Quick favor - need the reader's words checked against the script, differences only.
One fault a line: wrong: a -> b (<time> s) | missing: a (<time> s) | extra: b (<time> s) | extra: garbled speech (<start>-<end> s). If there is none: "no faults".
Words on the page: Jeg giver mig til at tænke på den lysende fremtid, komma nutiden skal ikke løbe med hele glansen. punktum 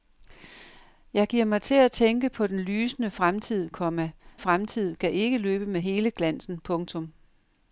wrong: nutiden -> fremtid (4.4 s)